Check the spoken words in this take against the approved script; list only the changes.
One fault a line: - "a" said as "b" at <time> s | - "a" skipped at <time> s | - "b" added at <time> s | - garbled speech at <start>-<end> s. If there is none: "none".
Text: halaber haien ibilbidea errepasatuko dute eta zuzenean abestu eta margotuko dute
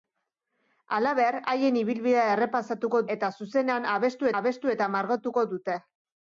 - "dute" skipped at 3.0 s
- "abestu" added at 4.4 s